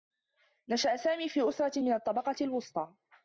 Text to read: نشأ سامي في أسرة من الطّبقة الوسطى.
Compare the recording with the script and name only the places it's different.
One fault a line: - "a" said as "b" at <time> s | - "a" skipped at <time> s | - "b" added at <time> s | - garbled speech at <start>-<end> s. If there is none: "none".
none